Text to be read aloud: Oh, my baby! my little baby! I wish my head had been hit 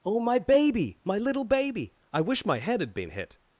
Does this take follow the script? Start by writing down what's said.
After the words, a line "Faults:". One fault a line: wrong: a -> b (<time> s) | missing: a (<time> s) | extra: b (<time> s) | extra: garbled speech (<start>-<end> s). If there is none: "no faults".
Oh, my baby! my little baby! I wish my head had been hit
Faults:
no faults